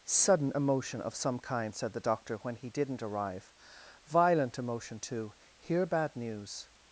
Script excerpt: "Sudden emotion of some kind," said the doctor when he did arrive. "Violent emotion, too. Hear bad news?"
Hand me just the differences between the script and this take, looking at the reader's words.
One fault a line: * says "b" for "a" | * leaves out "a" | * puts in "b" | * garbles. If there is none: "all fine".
* says "didn't" for "did"